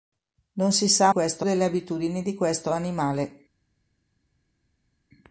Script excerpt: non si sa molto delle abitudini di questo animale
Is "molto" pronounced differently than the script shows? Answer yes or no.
yes